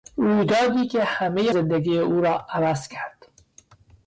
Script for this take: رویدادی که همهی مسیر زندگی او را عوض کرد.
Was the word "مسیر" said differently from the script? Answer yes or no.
yes